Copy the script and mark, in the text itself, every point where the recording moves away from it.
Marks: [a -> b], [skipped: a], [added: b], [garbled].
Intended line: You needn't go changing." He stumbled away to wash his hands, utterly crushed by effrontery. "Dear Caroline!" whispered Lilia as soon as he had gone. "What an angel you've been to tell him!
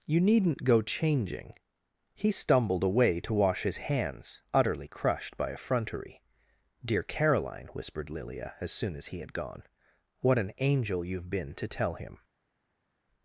You needn't go changing." He stumbled away to wash his hands, utterly crushed by effrontery. "Dear Caroline!" whispered Lilia as soon as he had gone. "What an angel you've been to tell him!